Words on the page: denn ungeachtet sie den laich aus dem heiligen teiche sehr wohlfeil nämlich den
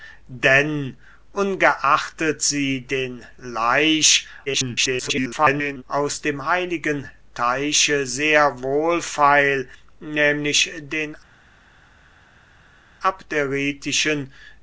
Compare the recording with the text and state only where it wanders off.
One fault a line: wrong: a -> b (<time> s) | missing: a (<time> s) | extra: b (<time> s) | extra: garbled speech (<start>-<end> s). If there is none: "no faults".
extra: garbled speech (4.5-5.8 s)